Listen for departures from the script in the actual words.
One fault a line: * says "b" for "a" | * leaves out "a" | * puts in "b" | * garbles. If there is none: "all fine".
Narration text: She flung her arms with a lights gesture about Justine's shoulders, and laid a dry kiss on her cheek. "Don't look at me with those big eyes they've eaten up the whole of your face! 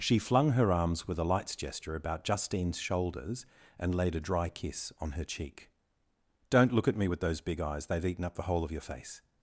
all fine